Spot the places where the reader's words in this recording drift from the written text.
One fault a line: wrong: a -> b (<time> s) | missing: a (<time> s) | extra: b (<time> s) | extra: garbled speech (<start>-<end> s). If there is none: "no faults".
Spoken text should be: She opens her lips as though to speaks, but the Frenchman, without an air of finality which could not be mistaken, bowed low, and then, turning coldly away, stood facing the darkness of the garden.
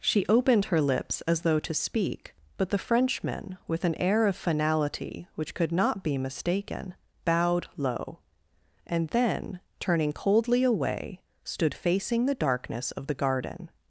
wrong: opens -> opened (0.3 s)
wrong: speaks -> speak (1.7 s)
wrong: without -> with (3.7 s)